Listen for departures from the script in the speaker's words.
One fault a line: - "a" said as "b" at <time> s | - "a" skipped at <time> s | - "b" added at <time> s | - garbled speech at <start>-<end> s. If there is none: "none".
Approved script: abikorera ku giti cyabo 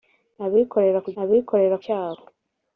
- "giti" said as "abikorera" at 1.2 s